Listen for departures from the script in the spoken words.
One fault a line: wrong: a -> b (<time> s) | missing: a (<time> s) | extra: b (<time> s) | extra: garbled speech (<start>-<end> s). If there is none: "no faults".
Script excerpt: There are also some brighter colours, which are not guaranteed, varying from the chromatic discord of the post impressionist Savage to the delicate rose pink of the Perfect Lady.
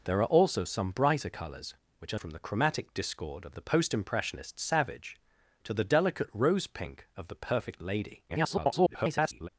missing: not guaranteed varying (2.2 s)
extra: garbled speech (8.3-9.5 s)